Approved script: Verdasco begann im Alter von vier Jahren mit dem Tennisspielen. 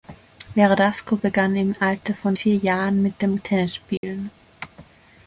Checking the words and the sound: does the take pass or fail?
fail